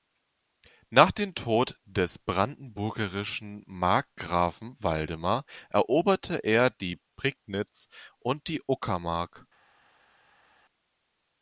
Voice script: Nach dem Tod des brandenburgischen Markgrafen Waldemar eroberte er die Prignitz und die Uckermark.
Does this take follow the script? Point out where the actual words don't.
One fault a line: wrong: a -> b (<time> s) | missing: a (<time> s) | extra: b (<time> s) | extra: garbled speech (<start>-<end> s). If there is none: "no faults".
no faults